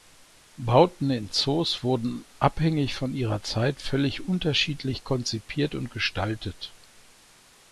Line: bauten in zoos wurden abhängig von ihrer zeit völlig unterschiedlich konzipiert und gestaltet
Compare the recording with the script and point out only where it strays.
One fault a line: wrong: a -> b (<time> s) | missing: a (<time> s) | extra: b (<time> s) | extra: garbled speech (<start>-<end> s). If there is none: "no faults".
no faults